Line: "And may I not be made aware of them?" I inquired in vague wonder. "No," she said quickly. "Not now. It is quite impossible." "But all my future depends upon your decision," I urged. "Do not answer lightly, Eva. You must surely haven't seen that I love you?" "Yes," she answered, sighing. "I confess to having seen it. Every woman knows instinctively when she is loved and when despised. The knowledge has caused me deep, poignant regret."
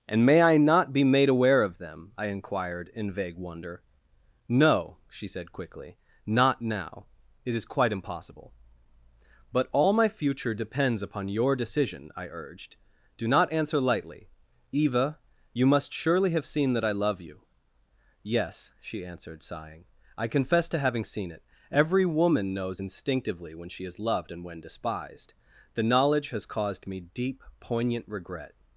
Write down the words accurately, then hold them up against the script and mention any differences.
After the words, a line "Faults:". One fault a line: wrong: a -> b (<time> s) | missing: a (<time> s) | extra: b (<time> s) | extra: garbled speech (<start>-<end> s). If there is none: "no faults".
"And may I not be made aware of them?" I inquired in vague wonder. "No," she said quickly. "Not now. It is quite impossible." "But all my future depends upon your decision," I urged. "Do not answer lightly, Eva. You must surely have seen that I love you?" "Yes," she answered, sighing. "I confess to having seen it. Every woman knows instinctively when she is loved and when despised. The knowledge has caused me deep, poignant regret."
Faults:
wrong: haven't -> have (16.3 s)